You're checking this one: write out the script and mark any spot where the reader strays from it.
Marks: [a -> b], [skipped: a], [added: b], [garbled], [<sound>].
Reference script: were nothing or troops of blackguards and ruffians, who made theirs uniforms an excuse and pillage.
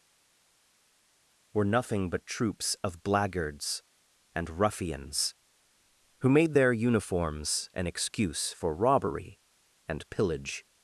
were nothing [or -> but] troops of blackguards and ruffians, who made [theirs -> their] uniforms an excuse [added: for robbery] and pillage.